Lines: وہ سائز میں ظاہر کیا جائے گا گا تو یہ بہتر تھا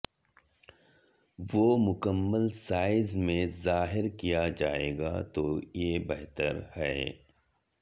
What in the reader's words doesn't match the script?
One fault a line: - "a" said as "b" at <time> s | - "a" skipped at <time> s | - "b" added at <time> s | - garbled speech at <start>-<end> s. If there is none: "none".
- "مکمل" added at 1.8 s
- "گا" skipped at 5.2 s
- "تھا" said as "ہے" at 6.8 s